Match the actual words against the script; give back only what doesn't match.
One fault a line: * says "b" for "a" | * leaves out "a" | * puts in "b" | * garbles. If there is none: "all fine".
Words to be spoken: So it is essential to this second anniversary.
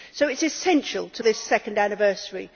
all fine